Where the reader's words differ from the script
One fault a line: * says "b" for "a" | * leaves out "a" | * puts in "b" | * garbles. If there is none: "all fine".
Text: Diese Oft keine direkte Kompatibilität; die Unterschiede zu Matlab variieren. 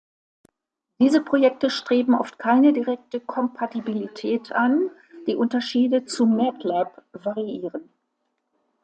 * puts in "Projekte streben"
* puts in "an"